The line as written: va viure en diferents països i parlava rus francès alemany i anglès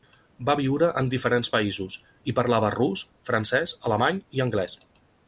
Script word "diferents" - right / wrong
right